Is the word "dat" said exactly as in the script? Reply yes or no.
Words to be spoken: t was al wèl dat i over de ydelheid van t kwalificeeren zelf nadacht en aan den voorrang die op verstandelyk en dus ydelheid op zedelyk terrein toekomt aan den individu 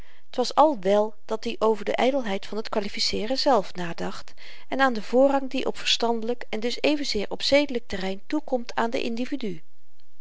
yes